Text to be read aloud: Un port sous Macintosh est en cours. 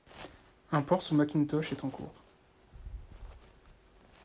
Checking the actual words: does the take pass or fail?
pass